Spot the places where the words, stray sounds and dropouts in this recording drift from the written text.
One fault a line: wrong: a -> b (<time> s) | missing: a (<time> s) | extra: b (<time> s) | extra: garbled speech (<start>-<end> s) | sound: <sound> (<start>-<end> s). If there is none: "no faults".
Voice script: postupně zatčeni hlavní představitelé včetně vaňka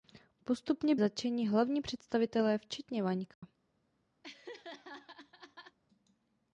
sound: dropout (3.3-3.4 s)
sound: laugh (4.2-5.8 s)